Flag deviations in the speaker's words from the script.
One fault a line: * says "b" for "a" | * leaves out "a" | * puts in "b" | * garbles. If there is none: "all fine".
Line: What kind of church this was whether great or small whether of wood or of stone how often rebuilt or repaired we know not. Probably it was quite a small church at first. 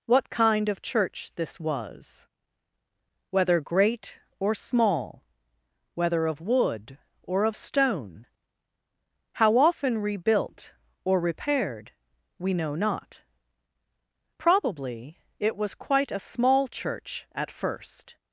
all fine